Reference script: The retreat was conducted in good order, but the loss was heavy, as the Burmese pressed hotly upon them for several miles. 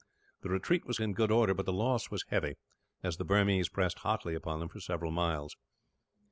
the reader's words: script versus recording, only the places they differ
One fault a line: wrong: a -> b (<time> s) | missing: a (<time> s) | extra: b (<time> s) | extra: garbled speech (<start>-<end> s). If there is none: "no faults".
missing: conducted (1.0 s)